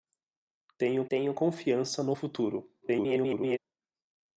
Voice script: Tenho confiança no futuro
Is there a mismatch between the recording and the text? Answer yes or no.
yes